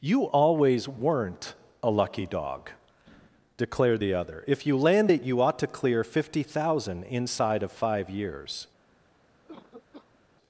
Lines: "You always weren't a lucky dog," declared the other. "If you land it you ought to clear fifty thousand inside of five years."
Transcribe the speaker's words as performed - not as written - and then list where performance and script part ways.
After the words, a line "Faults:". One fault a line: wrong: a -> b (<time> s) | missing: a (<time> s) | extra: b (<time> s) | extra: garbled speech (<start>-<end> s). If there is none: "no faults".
"You always weren't a lucky dog," declared the other. "If you land it you ought to clear fifty thousand inside of five years."
Faults:
no faults